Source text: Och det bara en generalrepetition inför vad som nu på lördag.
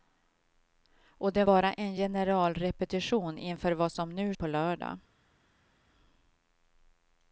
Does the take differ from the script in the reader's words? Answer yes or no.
no